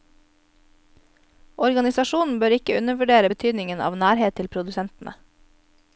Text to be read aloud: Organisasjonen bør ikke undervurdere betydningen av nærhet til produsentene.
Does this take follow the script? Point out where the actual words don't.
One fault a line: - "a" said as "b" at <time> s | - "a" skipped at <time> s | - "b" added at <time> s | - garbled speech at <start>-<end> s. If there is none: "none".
none